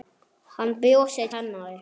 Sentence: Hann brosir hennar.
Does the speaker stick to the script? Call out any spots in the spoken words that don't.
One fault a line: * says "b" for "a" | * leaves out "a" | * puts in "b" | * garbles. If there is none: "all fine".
all fine